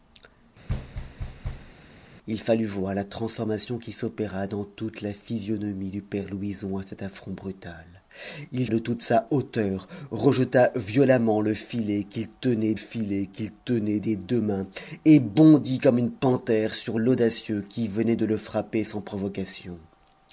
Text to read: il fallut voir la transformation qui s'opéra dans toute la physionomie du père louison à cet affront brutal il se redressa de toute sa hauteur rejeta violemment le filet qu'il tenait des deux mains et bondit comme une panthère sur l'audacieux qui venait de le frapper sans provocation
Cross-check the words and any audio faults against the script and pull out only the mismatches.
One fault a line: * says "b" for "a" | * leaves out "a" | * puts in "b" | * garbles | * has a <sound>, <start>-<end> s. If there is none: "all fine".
* has a thud, 0.7-1.7 s
* leaves out "se redressa"
* puts in "filet qu'il tenait"